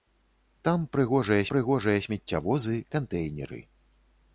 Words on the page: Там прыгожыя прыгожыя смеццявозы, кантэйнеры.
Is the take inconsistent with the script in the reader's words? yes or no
no